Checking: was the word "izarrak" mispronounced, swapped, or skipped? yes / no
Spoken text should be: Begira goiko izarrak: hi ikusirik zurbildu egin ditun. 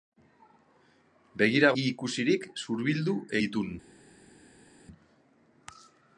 yes